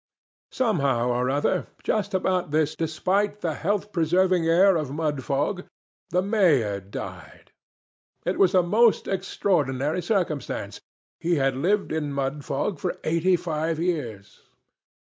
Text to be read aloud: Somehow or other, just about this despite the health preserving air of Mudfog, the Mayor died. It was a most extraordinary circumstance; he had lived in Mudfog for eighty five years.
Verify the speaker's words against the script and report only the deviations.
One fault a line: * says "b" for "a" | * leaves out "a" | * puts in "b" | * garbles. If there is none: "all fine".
all fine